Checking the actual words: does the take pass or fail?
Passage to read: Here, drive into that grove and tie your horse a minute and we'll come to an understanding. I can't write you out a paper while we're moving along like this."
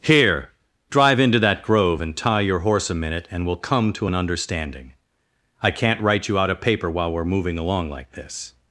pass